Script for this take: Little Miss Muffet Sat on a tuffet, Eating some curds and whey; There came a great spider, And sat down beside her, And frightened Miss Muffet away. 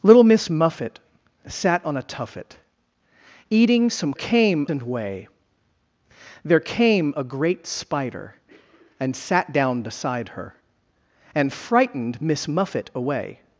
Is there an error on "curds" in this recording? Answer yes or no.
yes